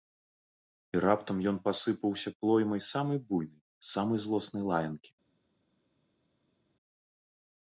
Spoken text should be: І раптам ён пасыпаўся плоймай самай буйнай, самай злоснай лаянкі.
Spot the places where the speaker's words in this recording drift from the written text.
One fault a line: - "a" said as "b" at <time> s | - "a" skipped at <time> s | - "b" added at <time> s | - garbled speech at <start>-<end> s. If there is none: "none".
none